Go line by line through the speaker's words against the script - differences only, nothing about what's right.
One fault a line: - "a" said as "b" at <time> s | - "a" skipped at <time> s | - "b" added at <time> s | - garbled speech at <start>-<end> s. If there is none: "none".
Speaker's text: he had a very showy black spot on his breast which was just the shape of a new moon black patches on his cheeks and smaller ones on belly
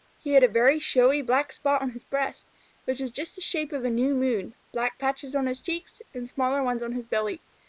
- "his" added at 6.9 s